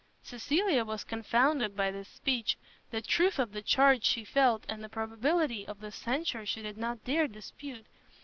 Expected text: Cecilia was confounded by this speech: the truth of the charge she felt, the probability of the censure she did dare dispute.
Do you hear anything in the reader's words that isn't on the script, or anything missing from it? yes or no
yes